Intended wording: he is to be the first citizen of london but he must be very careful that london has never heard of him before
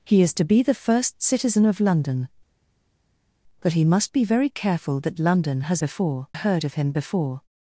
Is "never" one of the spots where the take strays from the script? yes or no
yes